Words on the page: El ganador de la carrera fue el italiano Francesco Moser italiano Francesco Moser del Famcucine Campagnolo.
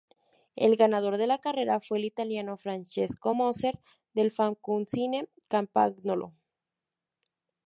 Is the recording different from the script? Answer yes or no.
yes